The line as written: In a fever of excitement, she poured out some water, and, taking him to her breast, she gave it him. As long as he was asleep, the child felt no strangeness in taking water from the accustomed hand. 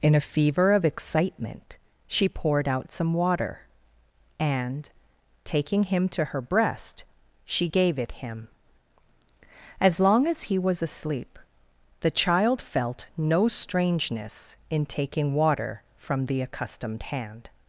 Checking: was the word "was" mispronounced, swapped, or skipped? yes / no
no